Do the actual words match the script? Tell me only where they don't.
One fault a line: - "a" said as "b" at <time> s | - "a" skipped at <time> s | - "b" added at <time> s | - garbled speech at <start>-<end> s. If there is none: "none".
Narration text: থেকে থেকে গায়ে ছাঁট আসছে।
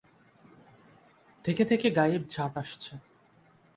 none